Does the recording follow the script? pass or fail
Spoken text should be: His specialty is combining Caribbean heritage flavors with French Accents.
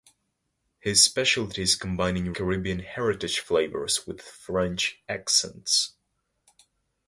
pass